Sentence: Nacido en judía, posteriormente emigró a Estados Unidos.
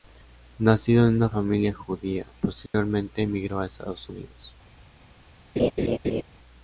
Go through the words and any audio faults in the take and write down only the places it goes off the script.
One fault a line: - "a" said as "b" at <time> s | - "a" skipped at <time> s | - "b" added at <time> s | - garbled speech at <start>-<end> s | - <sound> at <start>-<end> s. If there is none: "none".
- "una familia" added at 1.2 s
- dropout at 2.7-2.7 s
- laugh at 5.6-6.2 s